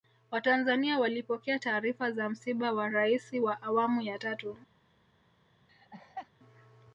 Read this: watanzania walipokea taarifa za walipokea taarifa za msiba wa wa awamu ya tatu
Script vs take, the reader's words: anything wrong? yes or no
yes